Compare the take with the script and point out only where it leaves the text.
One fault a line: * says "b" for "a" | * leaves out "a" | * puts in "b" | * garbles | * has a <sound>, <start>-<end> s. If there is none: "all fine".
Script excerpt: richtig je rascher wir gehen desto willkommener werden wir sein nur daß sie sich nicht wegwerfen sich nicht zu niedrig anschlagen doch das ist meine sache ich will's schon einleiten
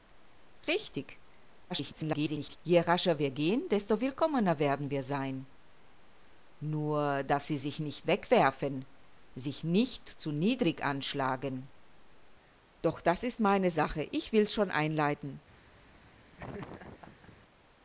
* garbles
* has a laugh, 16.4-17.4 s